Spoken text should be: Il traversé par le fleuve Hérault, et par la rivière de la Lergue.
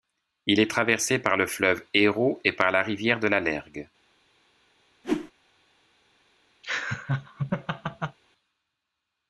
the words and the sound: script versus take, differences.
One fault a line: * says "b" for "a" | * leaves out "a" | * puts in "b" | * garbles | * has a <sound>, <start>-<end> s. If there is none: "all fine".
* puts in "est"
* has a whoosh, 5.0-5.3 s
* has a laugh, 6.6-8.2 s